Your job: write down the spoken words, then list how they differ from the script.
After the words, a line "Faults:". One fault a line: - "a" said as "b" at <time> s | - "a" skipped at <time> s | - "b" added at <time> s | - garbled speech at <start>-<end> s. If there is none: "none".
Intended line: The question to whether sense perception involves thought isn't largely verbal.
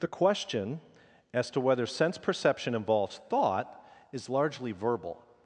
The question as to whether sense perception involves thought is largely verbal.
Faults:
- "as" added at 1.3 s
- "isn't" said as "is" at 4.1 s